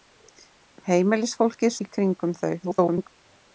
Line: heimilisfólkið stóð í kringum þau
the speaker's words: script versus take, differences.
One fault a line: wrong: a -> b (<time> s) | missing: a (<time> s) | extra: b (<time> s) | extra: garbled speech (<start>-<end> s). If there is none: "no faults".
missing: stóð (1.8 s)
extra: garbled speech (2.6-3.1 s)